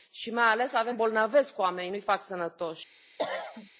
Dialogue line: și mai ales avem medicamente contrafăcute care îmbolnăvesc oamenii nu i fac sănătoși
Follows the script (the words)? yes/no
no